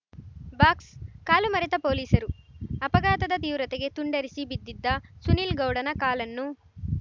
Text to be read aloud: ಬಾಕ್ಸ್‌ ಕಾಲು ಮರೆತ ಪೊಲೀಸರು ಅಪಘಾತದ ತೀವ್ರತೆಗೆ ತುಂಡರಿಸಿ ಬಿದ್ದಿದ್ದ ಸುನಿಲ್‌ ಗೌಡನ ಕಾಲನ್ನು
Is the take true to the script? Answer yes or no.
yes